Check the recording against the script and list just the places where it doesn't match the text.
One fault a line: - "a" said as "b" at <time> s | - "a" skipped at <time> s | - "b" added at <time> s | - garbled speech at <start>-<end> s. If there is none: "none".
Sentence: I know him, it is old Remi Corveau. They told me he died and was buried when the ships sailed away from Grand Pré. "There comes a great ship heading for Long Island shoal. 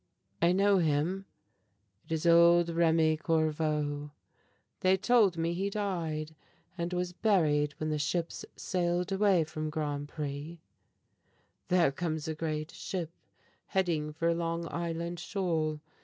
none